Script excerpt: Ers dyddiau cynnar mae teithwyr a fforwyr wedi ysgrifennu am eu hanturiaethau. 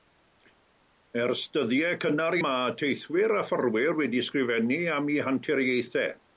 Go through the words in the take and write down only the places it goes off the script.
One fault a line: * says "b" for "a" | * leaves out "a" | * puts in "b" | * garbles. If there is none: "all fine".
all fine